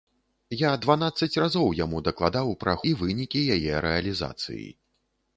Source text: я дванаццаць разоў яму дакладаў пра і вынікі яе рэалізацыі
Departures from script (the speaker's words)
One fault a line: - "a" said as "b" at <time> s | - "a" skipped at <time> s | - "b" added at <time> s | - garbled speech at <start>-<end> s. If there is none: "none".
none